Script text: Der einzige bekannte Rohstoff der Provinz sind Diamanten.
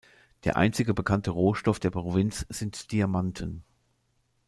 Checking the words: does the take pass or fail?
pass